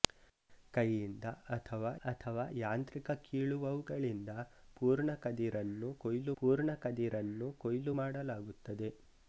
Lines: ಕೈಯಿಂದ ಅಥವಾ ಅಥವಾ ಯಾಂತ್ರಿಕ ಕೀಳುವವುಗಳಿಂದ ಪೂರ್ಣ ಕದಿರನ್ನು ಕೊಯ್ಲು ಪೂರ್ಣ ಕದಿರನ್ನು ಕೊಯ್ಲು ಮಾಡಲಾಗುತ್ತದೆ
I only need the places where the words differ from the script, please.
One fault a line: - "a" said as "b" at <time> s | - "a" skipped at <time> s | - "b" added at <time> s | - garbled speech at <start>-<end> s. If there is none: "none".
none